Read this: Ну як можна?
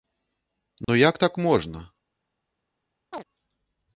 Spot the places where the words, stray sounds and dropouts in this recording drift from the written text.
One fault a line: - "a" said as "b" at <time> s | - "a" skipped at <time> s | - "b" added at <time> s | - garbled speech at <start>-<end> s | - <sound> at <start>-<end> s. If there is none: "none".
- dropout at 0.8-0.9 s
- "так" added at 1.2 s
- chirp at 3.1-3.2 s